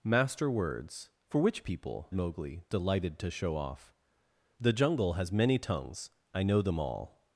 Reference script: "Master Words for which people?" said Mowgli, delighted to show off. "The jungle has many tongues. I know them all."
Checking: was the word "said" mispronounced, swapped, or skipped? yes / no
yes